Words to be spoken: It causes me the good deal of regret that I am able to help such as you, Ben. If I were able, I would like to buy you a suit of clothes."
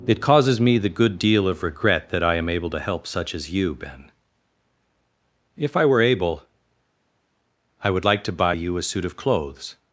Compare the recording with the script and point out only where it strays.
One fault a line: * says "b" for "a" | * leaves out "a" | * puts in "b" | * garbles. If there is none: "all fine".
all fine